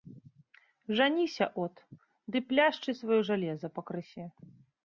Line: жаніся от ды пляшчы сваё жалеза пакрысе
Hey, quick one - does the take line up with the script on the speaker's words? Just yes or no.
yes